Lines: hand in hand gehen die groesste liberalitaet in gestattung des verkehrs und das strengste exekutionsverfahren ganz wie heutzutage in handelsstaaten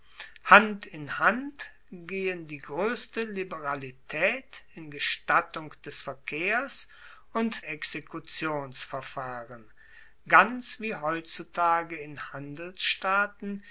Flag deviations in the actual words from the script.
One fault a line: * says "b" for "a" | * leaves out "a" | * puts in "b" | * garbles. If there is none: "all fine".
* leaves out "das strengste"